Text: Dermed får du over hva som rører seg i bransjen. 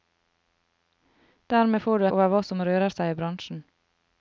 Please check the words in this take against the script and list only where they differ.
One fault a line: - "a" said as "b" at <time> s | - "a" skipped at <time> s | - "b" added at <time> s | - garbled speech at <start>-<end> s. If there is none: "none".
none